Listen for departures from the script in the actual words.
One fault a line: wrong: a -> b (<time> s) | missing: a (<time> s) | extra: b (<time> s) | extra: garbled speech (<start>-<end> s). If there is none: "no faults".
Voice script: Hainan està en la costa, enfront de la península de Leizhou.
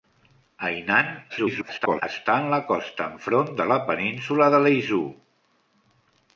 extra: garbled speech (1.3-2.0 s)